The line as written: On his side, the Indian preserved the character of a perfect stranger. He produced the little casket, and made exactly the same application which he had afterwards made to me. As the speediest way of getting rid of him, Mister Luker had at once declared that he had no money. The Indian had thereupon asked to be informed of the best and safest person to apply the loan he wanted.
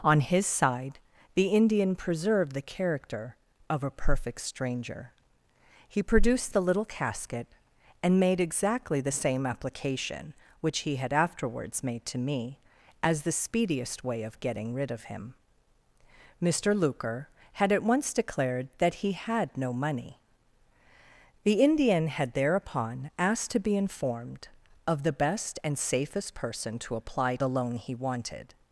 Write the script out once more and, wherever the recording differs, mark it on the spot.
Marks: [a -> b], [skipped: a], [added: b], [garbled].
On his side, the Indian preserved the character of a perfect stranger. He produced the little casket, and made exactly the same application which he had afterwards made to me. As the speediest way of getting rid of him, Mister Luker had at once declared that he had no money. The Indian had thereupon asked to be informed of the best and safest person to apply the loan he wanted.